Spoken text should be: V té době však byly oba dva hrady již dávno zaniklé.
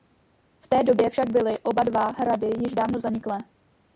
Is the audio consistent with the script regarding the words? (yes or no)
yes